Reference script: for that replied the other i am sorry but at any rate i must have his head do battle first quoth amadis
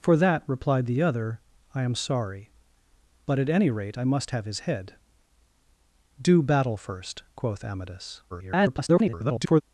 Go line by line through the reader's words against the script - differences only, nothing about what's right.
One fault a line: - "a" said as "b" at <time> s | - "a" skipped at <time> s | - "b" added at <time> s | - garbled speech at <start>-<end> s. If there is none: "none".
- garbled speech at 8.3-9.6 s